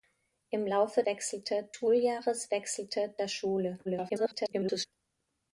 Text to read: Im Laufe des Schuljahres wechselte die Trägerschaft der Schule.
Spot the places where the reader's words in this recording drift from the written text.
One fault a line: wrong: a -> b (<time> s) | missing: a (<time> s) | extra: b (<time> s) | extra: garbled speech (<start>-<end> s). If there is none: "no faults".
wrong: des -> wechselte (1.1 s)
missing: die Trägerschaft (3.1 s)
extra: garbled speech (3.8-4.9 s)